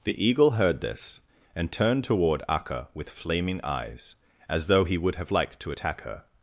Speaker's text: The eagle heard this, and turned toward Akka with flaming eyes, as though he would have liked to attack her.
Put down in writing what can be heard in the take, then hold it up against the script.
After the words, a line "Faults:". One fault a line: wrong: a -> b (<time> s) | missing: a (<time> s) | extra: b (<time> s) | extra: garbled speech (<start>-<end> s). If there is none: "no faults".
The eagle heard this, and turned toward Akka with flaming eyes, as though he would have liked to attack her.
Faults:
no faults